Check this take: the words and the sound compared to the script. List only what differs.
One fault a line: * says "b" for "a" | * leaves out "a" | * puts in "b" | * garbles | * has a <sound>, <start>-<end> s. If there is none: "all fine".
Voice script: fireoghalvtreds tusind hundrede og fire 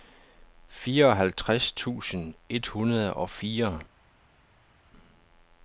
* puts in "et"